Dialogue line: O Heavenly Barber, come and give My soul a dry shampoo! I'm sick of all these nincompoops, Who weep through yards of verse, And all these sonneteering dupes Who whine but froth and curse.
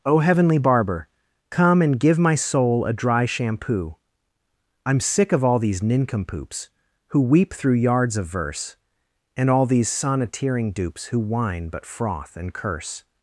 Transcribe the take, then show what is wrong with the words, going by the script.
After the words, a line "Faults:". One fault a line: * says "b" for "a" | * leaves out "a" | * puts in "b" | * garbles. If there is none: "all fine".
O Heavenly Barber, come and give My soul a dry shampoo! I'm sick of all these nincompoops, Who weep through yards of verse, And all these sonneteering dupes Who whine but froth and curse.
Faults:
all fine